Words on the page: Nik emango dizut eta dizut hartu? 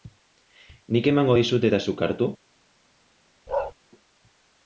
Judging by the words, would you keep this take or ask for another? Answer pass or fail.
fail